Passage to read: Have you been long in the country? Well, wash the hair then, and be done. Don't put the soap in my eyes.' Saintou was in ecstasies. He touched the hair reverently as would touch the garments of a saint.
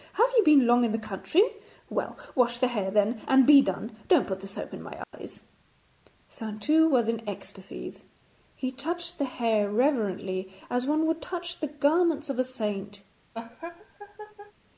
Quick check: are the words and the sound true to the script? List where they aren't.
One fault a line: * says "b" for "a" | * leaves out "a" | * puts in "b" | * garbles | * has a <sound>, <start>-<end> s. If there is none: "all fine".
* has a dropout, 5.0-5.1 s
* puts in "one"
* has a laugh, 13.3-14.5 s